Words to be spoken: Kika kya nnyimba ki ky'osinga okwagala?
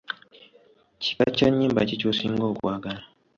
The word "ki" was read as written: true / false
true